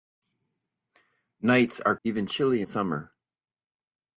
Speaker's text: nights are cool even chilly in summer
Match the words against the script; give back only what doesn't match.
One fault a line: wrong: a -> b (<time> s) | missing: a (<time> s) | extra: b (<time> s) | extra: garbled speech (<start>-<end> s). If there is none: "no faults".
missing: cool (1.9 s)
missing: in (2.6 s)